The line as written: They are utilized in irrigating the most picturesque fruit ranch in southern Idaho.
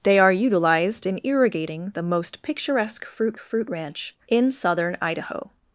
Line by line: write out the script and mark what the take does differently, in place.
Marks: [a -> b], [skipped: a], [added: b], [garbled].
They are utilized in irrigating the most picturesque fruit [added: fruit] ranch in southern Idaho.